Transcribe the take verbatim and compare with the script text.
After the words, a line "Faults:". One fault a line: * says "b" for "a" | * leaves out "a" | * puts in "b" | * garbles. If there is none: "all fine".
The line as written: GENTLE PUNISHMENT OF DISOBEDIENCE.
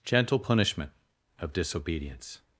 GENTLE PUNISHMENT OF DISOBEDIENCE.
Faults:
all fine